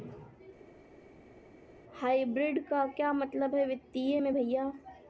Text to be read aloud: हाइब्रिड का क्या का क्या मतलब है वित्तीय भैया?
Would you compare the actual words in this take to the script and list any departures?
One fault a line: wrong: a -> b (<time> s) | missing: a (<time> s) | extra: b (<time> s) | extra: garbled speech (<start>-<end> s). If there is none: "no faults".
missing: का क्या (3.1 s)
extra: में (4.2 s)